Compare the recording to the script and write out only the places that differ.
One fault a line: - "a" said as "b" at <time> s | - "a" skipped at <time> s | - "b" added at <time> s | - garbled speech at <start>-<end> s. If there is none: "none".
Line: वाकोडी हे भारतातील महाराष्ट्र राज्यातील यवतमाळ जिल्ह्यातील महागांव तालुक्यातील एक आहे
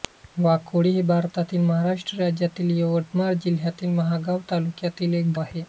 none